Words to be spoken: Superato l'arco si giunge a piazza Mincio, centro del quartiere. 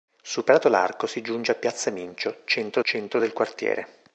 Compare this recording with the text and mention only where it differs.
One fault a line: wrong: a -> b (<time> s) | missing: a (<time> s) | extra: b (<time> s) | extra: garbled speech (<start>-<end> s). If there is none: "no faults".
extra: centro (2.8 s)